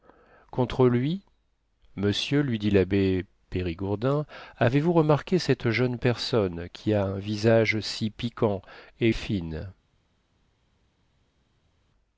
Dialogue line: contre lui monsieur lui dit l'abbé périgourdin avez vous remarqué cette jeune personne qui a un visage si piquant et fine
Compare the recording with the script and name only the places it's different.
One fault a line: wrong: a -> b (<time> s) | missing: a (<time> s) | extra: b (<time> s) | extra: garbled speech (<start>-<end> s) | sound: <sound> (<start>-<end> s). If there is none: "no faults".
no faults